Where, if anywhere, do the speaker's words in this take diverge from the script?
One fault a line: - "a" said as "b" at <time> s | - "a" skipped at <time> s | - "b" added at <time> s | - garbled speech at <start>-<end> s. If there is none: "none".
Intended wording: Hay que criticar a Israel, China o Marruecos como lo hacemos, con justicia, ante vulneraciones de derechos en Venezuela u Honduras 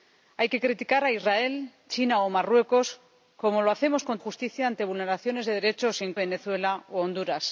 none